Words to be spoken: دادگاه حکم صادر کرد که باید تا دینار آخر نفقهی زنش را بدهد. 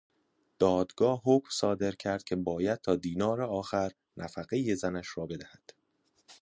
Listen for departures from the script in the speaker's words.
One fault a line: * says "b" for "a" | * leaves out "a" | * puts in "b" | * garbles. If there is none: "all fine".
all fine